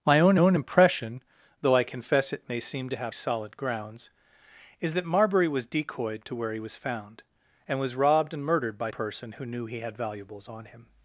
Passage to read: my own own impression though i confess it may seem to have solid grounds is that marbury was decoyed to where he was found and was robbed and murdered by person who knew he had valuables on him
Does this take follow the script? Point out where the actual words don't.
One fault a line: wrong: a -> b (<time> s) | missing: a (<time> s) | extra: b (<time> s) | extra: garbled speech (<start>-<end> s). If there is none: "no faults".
no faults